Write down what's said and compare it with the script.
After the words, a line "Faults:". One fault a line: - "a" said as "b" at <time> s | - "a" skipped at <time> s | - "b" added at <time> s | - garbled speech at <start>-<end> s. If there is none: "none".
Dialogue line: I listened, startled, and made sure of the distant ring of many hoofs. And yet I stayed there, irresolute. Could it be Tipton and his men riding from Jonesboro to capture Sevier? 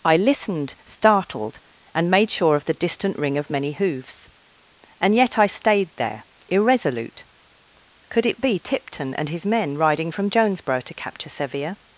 I listened, startled, and made sure of the distant ring of many hoofs. And yet I stayed there, irresolute. Could it be Tipton and his men riding from Jonesboro to capture Sevier?
Faults:
none